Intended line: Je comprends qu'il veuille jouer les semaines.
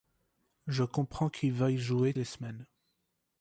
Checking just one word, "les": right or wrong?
right